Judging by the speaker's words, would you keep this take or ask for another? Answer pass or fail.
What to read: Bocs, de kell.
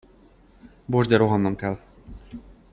fail